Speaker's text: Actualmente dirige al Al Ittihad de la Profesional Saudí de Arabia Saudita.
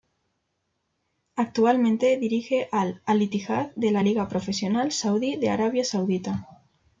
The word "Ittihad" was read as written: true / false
true